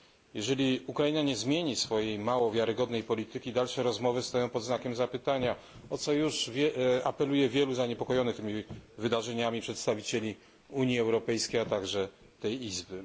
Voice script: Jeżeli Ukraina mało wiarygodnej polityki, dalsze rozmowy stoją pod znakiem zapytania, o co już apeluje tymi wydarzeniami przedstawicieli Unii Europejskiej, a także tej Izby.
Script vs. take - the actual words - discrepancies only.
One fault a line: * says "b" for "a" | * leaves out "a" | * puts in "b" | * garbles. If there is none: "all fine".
* puts in "nie zmieni swojej"
* puts in "wielu zaniepokojonych"